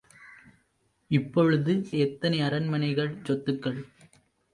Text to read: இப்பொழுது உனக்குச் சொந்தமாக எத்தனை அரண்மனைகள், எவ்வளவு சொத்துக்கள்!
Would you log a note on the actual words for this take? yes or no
yes